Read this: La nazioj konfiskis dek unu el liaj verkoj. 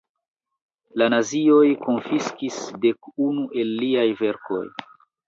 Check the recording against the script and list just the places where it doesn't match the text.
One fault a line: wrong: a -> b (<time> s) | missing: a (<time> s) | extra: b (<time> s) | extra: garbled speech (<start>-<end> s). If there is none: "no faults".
no faults